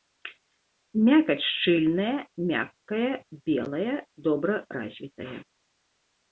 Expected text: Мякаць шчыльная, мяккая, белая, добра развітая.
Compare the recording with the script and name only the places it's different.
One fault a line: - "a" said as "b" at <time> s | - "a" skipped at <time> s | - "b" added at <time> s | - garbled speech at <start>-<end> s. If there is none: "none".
none